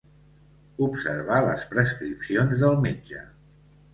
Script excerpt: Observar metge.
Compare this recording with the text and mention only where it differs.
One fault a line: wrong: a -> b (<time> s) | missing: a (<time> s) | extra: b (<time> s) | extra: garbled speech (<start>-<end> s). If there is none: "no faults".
extra: les prescripcions del (1.5 s)